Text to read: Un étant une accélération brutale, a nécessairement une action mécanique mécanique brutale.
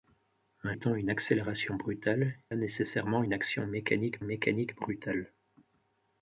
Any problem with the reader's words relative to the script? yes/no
no